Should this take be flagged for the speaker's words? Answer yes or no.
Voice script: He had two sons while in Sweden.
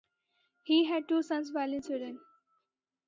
no